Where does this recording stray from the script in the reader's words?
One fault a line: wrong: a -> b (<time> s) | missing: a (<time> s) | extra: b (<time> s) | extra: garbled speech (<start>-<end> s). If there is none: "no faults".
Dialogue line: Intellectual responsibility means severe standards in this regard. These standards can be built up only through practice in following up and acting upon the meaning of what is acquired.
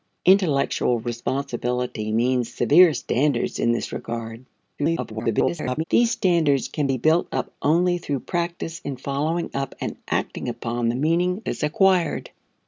extra: garbled speech (4.8-5.8 s)
missing: of what (11.4 s)